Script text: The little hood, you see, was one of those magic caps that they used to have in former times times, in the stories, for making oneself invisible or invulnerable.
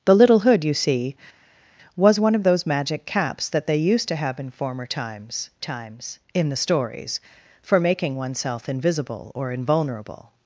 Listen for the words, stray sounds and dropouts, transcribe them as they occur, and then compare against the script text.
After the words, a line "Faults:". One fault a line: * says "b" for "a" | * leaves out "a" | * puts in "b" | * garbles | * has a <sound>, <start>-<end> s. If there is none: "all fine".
The little hood, you see, was one of those magic caps that they used to have in former times times, in the stories, for making oneself invisible or invulnerable.
Faults:
all fine